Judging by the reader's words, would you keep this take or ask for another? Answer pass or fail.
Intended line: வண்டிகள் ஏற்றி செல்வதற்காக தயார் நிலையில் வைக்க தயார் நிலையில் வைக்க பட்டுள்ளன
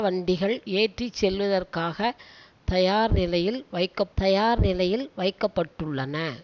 pass